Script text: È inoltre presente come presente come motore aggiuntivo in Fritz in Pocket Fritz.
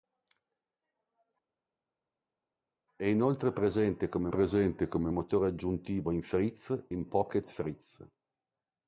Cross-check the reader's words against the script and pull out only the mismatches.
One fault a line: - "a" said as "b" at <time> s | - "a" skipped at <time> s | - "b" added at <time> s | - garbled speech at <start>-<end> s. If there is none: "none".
none